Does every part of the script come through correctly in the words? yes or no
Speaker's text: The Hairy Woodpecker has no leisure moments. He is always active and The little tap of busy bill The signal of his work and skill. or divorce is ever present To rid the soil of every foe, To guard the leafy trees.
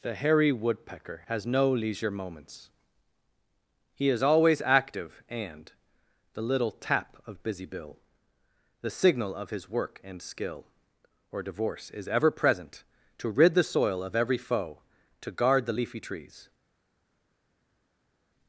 yes